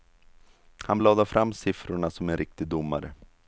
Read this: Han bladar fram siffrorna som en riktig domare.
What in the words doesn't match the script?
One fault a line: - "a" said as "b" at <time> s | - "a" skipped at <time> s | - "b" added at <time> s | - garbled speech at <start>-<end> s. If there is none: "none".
none